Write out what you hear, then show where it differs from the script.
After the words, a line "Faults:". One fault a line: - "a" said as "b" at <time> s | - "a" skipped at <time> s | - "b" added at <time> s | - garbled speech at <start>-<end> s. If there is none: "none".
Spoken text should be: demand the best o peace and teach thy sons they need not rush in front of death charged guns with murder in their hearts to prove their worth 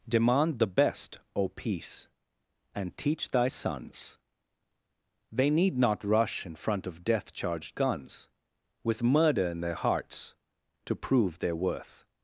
demand the best o peace and teach thy sons they need not rush in front of death charged guns with murder in their hearts to prove their worth
Faults:
none